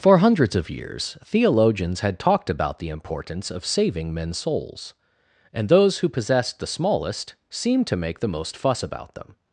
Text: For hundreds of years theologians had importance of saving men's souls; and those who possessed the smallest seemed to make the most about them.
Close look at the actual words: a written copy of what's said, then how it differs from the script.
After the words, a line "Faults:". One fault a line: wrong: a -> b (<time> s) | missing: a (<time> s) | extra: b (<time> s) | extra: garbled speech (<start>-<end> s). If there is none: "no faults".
For hundreds of years theologians had talked about the importance of saving men's souls; and those who possessed the smallest seemed to make the most fuss about them.
Faults:
extra: talked about the (2.2 s)
extra: fuss (8.5 s)